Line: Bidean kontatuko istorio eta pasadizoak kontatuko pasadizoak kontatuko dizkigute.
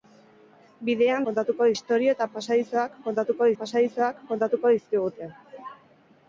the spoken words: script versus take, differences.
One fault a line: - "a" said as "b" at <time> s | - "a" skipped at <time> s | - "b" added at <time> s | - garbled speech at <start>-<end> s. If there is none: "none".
none